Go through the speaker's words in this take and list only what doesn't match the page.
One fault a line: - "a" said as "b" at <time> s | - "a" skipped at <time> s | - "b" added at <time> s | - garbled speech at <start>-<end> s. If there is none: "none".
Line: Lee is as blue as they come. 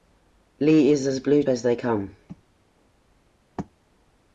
none